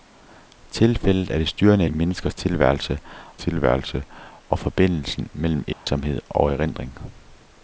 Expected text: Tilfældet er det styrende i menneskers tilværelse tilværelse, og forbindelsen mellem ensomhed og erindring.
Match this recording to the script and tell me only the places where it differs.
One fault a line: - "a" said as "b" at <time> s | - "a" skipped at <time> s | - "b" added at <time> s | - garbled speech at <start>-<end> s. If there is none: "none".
none